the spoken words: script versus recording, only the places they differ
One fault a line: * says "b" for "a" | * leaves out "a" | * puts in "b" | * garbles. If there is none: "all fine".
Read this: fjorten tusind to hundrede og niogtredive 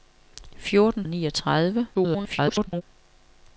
* leaves out "tusind to hundrede"
* garbles